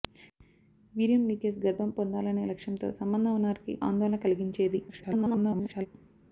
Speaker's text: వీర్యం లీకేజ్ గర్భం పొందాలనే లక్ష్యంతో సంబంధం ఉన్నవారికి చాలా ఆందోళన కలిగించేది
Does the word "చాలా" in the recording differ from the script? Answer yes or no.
yes